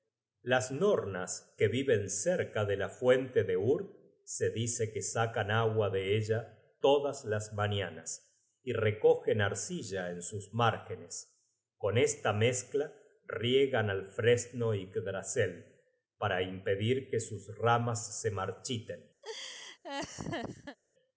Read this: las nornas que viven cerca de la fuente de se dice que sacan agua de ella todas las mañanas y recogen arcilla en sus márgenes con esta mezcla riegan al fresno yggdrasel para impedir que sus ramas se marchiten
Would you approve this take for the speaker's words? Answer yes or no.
no